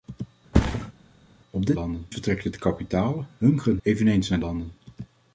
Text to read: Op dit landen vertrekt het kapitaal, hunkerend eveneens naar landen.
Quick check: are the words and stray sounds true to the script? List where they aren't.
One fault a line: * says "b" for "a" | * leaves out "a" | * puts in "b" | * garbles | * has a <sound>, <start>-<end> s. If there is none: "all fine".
* has a thud, 0.5-0.9 s